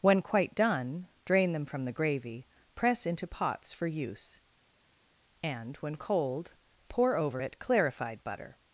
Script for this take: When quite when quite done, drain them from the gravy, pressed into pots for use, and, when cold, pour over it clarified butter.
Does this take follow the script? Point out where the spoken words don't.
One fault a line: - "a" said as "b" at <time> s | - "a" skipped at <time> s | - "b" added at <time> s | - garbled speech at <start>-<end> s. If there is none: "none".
- "when quite" skipped at 0.6 s
- "pressed" said as "press" at 2.7 s